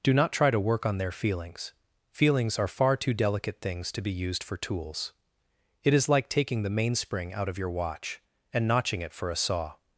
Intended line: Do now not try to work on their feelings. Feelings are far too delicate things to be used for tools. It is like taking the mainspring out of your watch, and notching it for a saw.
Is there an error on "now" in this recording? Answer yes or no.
yes